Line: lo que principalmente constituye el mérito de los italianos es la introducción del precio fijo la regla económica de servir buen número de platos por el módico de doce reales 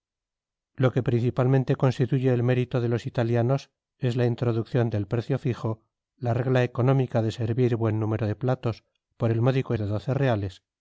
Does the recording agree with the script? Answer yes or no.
yes